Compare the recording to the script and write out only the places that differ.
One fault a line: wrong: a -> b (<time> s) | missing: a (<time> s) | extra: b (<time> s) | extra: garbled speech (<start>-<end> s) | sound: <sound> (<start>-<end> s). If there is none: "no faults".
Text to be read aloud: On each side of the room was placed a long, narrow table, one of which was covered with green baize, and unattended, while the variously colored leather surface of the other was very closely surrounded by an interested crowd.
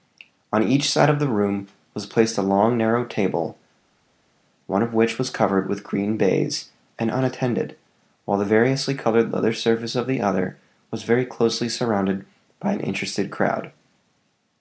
no faults